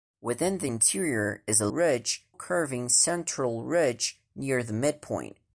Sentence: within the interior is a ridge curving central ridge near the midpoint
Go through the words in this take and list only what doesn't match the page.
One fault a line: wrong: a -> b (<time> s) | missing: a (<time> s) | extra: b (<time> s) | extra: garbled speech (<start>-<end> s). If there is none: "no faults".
no faults